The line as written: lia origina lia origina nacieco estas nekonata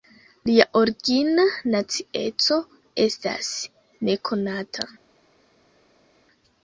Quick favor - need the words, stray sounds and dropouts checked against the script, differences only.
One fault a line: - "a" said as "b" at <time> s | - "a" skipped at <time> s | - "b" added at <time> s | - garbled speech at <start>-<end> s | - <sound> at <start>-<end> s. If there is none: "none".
- "lia origina" skipped at 1.4 s